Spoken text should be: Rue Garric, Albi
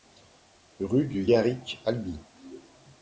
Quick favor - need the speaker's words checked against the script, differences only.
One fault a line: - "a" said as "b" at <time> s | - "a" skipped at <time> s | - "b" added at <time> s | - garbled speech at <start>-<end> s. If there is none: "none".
- "du" added at 1.1 s